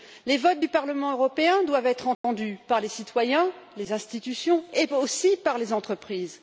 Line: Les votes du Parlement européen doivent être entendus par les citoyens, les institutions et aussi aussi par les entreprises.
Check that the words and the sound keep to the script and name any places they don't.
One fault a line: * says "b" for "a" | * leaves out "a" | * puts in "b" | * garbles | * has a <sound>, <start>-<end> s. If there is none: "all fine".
* has a dropout, 2.1-2.2 s
* leaves out "aussi"